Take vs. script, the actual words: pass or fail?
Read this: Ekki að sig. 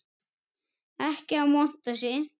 fail